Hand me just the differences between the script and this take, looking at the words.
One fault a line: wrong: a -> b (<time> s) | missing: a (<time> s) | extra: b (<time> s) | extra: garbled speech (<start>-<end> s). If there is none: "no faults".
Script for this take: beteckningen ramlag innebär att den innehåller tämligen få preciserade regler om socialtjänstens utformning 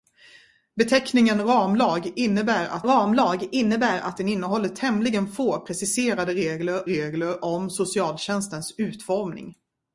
extra: ramlag innebär att (2.8 s)
extra: regler (6.9 s)